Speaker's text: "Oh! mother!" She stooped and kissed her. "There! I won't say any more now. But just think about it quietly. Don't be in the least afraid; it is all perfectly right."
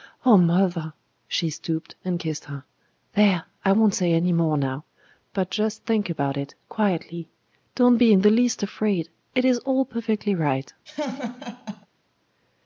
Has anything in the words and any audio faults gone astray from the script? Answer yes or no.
yes